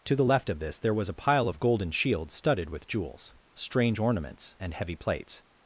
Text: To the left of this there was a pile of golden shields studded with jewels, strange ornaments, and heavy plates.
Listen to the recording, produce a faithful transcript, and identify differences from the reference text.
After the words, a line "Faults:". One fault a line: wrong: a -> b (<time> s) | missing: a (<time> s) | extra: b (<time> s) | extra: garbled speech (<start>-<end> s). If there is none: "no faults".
To the left of this there was a pile of golden shields studded with jewels, strange ornaments, and heavy plates.
Faults:
no faults